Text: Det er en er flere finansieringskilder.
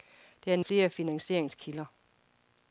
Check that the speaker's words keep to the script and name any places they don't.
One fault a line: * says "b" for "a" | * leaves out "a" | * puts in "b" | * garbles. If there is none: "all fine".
all fine